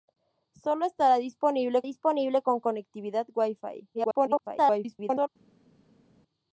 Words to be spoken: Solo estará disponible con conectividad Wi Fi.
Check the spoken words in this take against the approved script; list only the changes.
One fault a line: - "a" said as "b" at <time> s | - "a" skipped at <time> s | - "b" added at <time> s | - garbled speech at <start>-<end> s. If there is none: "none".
- "disponible" added at 1.8 s
- garbled speech at 3.9-5.3 s